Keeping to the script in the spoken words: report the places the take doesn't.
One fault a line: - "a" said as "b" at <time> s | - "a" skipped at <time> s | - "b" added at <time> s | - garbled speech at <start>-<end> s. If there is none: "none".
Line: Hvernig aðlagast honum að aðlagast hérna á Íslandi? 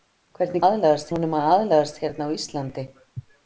none